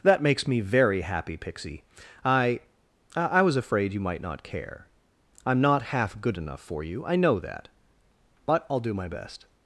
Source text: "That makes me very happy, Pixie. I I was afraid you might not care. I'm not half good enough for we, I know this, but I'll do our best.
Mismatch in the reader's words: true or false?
true